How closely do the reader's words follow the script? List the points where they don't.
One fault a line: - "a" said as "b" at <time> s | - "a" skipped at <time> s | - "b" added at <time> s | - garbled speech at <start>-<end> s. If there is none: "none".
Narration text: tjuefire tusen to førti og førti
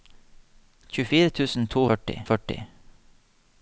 none